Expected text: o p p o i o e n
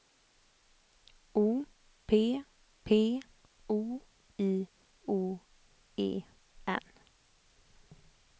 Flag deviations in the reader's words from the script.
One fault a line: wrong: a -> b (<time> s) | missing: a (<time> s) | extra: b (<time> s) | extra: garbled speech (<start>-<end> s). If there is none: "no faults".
no faults